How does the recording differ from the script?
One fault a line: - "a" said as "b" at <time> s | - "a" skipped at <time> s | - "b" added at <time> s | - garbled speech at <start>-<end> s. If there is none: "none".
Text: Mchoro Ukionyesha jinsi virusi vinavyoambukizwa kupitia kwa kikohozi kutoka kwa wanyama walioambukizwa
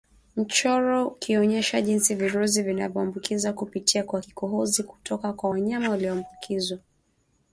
none